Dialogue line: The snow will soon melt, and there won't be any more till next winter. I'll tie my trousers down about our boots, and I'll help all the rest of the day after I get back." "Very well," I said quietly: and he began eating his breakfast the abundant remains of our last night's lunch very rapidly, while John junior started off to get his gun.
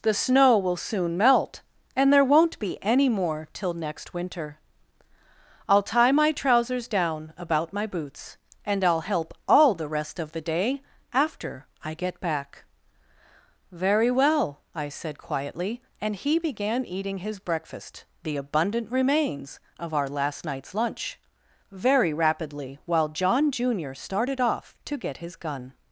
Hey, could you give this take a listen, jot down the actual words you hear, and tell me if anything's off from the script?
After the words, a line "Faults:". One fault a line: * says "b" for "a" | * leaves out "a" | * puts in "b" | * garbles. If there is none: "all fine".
The snow will soon melt, and there won't be any more till next winter. I'll tie my trousers down about my boots, and I'll help all the rest of the day after I get back." "Very well," I said quietly: and he began eating his breakfast the abundant remains of our last night's lunch very rapidly, while John junior started off to get his gun.
Faults:
* says "my" for "our"